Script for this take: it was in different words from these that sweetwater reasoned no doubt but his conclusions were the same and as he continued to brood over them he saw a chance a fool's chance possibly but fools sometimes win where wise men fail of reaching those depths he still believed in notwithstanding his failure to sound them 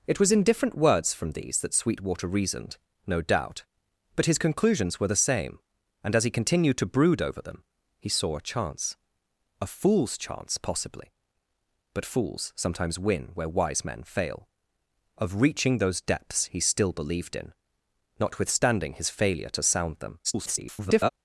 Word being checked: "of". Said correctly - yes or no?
yes